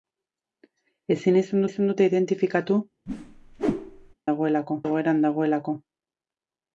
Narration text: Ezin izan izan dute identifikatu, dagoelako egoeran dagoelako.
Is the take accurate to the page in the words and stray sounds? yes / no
no